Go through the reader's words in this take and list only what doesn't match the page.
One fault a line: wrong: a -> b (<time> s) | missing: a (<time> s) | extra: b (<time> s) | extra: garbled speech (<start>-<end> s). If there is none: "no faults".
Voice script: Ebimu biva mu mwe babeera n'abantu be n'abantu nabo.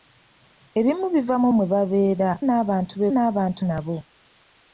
no faults